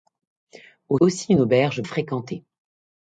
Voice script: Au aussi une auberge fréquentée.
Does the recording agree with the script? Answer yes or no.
yes